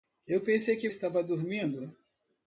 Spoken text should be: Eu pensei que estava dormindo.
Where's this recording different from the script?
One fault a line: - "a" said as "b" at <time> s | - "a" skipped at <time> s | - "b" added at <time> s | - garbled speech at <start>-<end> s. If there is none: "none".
none